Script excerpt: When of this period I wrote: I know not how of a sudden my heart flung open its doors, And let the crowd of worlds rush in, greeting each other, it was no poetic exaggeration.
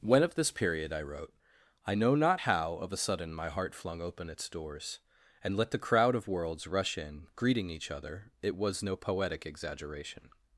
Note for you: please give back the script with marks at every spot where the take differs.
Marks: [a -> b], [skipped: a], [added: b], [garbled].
When of this period I wrote: I know not how of a sudden my heart flung open its doors, And let the crowd of worlds rush in, greeting each other, it was no poetic exaggeration.